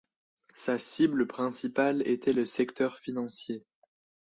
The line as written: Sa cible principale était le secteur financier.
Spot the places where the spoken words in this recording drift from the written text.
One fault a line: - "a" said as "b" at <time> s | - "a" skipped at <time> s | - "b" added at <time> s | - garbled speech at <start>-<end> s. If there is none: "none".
none